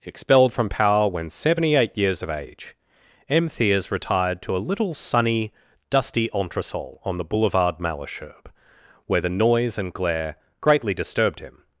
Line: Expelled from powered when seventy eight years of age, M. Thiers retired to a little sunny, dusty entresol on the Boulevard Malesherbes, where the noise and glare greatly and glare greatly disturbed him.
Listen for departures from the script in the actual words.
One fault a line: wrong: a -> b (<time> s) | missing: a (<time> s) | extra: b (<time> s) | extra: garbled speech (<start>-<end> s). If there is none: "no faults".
wrong: powered -> power (0.7 s)
missing: and glare greatly (10.9 s)